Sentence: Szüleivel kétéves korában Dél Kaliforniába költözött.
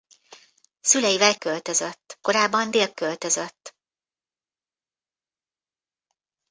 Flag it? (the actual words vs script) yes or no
yes